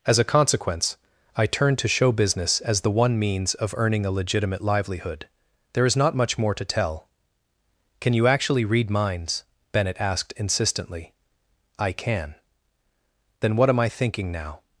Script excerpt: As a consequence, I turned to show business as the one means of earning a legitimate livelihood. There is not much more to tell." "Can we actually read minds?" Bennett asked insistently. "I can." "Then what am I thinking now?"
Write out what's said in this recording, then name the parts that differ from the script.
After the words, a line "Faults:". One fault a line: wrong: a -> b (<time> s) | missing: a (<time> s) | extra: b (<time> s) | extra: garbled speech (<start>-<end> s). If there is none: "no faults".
As a consequence, I turned to show business as the one means of earning a legitimate livelihood. There is not much more to tell." "Can you actually read minds?" Bennett asked insistently. "I can." "Then what am I thinking now?"
Faults:
wrong: we -> you (8.1 s)